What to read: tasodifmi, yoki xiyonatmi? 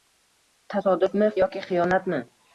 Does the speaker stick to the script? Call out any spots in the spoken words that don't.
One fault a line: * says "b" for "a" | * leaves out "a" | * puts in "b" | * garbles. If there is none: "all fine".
all fine